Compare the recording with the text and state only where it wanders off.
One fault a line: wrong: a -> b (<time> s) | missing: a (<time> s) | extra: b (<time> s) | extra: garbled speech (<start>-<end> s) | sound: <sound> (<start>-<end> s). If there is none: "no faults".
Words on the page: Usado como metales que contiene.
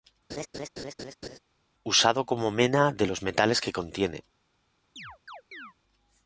sound: laugh (0.3-1.4 s)
extra: mena de los (2.5 s)
sound: chirp (5.0-5.7 s)